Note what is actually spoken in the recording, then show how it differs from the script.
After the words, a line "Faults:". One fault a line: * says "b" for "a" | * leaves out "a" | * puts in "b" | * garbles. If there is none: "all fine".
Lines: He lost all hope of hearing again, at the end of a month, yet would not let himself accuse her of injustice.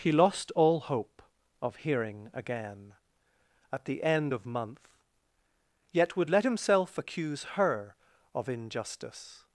He lost all hope of hearing again, at the end of month, yet would let himself accuse her of injustice.
Faults:
* leaves out "a"
* leaves out "not"